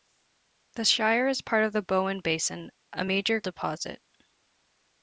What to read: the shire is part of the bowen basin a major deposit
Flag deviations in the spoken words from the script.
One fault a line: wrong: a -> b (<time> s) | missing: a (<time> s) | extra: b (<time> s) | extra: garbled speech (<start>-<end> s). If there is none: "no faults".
no faults